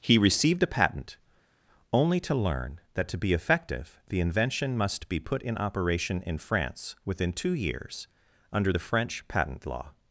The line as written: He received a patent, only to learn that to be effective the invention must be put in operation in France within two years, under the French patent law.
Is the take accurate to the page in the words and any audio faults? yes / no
yes